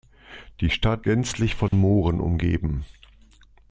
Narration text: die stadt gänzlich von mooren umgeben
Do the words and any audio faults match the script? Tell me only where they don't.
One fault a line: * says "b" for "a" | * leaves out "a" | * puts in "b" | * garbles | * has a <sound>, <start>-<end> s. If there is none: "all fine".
* has a dropout, 1.7-1.7 s